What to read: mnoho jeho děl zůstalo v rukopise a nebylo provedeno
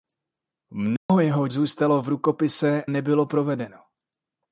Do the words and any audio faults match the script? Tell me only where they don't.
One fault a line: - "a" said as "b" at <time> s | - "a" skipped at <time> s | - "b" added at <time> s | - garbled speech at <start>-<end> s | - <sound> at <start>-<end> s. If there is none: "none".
- dropout at 1.0-1.1 s
- "děl" skipped at 1.5 s
- "a" skipped at 2.8 s